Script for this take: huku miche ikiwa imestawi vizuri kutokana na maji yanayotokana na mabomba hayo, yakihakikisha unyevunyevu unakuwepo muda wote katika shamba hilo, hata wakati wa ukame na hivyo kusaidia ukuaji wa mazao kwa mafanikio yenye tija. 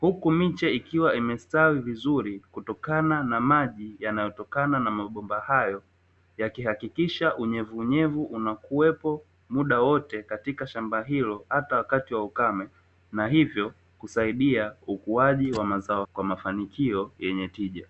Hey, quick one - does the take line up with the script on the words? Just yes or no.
yes